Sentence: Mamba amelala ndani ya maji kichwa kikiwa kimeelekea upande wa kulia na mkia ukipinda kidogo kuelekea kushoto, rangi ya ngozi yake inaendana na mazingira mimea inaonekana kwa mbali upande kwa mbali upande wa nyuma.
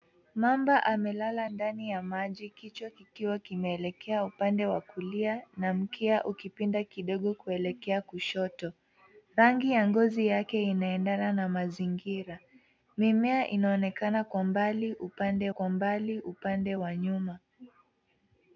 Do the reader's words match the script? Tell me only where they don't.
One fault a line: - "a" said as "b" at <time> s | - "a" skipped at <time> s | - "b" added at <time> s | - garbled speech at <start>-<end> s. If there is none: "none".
none